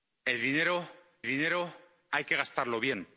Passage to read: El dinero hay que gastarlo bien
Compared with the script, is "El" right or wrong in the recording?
right